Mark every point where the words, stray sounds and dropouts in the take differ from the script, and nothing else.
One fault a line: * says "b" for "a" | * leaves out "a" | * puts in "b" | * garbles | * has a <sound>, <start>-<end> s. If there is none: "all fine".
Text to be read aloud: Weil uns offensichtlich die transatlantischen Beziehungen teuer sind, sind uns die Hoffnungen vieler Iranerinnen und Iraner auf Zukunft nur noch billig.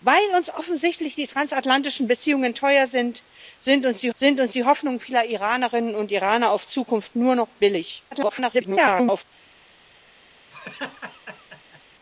* puts in "sind uns die"
* garbles
* has a laugh, 10.5-11.8 s